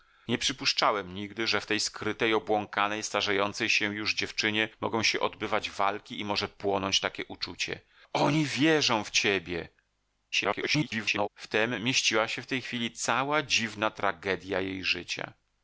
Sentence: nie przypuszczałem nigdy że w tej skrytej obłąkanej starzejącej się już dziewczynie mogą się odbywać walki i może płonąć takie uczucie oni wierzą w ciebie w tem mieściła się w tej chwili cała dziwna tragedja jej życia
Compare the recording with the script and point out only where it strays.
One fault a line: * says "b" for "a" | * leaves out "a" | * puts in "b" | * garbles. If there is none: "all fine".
* garbles